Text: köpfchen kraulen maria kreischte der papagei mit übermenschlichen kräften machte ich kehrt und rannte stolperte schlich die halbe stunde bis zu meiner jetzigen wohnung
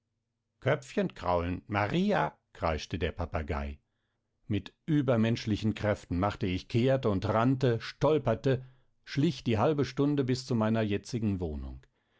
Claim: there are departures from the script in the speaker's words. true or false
false